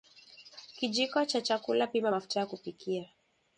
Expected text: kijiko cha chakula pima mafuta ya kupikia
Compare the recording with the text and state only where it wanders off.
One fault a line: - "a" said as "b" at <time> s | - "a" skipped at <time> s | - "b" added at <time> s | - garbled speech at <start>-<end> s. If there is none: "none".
none